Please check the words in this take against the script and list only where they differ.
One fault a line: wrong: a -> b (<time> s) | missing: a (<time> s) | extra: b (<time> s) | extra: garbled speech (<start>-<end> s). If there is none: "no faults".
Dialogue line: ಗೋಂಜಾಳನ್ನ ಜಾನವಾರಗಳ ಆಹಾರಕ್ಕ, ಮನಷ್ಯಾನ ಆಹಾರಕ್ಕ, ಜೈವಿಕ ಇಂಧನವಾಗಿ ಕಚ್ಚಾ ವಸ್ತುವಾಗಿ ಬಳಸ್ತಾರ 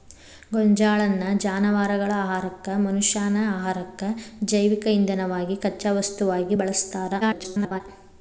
extra: garbled speech (7.2-7.8 s)